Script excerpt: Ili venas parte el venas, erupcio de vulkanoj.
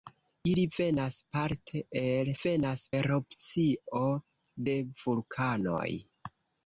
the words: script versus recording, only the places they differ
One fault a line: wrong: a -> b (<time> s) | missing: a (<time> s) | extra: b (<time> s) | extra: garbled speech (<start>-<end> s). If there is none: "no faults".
no faults